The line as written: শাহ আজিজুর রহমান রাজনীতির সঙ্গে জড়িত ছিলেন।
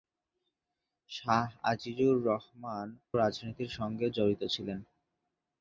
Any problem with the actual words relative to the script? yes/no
no